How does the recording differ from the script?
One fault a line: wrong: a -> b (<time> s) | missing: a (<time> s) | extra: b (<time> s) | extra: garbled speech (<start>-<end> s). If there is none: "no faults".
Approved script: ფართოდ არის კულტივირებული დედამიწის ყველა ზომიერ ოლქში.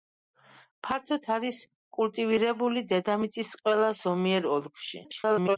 extra: garbled speech (5.0-5.6 s)